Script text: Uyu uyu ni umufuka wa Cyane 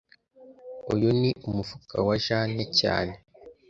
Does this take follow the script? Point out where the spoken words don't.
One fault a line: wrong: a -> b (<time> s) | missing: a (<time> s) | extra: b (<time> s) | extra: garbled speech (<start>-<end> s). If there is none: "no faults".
missing: uyu (1.1 s)
extra: Jane (2.2 s)